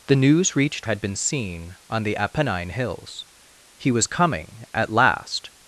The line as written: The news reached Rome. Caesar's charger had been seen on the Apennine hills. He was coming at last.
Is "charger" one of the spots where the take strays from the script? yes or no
yes